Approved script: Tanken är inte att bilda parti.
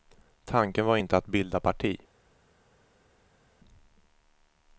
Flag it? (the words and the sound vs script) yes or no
yes